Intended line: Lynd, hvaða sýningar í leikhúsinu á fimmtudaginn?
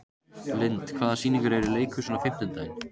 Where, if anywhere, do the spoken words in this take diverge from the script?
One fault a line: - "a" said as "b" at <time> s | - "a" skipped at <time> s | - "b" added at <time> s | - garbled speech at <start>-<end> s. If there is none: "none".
- "eru" added at 1.6 s